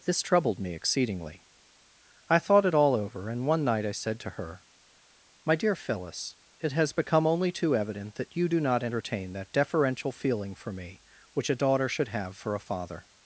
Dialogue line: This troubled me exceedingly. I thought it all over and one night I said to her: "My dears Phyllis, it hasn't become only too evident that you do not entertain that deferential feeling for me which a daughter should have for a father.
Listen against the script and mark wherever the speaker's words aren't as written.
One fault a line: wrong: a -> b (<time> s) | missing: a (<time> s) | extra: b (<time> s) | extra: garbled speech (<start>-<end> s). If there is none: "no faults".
wrong: dears -> dear (5.5 s)
wrong: hasn't -> has (6.7 s)